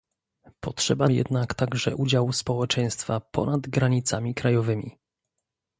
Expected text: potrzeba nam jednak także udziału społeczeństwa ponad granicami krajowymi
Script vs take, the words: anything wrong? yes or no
yes